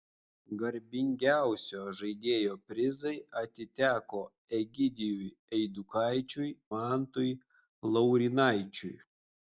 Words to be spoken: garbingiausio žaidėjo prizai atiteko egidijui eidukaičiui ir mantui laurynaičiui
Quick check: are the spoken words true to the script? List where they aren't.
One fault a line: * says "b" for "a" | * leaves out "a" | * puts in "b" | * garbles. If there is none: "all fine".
* leaves out "ir"